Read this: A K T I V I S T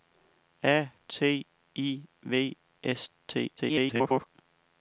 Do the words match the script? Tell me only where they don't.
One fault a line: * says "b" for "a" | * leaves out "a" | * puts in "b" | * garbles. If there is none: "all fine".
* leaves out "K"
* leaves out "I"
* garbles